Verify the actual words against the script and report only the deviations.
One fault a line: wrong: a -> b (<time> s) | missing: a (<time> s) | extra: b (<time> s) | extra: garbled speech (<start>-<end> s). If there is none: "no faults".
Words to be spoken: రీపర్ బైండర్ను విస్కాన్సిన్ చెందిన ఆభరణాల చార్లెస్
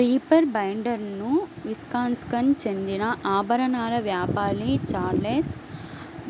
extra: వ్యాపారి (4.1 s)